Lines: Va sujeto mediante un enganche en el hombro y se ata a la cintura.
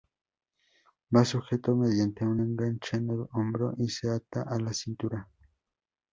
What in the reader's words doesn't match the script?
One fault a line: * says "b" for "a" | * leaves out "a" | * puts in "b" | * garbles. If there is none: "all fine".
all fine